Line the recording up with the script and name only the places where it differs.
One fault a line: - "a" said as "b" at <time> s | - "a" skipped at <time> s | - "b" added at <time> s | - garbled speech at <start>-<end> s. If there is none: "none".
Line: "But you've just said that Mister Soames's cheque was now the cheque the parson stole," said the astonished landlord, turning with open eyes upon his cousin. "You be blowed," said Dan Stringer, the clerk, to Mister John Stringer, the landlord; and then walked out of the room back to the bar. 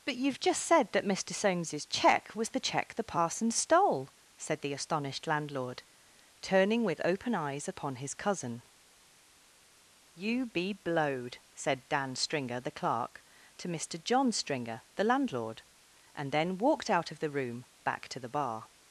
- "now" skipped at 2.5 s